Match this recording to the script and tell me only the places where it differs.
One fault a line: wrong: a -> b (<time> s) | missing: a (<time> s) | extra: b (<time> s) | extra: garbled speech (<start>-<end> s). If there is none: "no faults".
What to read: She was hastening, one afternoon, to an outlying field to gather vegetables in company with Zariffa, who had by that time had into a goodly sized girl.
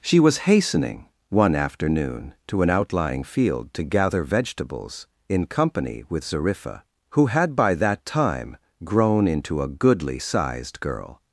wrong: had -> grown (8.8 s)